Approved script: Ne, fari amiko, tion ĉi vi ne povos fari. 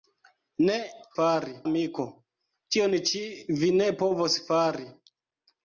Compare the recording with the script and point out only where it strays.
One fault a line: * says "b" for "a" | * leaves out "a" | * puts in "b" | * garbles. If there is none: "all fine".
all fine